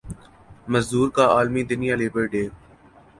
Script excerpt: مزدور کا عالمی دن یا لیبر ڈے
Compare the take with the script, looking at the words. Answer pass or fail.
pass